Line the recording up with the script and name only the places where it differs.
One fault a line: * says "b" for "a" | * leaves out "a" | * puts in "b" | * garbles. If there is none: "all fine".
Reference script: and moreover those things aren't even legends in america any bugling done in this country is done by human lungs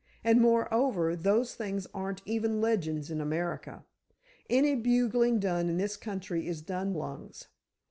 * leaves out "by human"